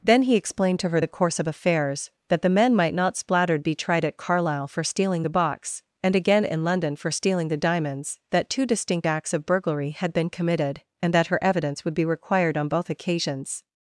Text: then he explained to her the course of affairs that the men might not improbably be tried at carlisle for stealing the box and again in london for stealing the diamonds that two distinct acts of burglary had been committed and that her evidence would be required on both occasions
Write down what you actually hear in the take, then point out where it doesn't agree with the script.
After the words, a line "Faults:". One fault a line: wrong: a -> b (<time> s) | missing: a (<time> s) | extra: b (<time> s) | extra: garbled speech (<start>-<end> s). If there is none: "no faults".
then he explained to her the course of affairs that the men might not splattered be tried at carlisle for stealing the box and again in london for stealing the diamonds that two distinct acts of burglary had been committed and that her evidence would be required on both occasions
Faults:
wrong: improbably -> splattered (3.2 s)